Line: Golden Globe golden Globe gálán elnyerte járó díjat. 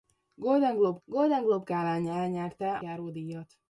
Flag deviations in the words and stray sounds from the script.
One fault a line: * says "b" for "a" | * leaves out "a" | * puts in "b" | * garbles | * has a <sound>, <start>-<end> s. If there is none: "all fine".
all fine